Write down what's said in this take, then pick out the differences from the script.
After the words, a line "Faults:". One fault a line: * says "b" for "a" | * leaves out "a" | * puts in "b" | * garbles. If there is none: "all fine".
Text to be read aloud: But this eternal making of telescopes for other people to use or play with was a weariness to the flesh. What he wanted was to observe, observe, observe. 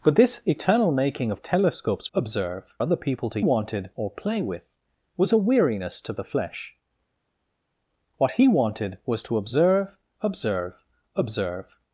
But this eternal making of telescopes observe other people to wanted or play with was a weariness to the flesh. What he wanted was to observe, observe, observe.
Faults:
* says "observe" for "for"
* says "wanted" for "use"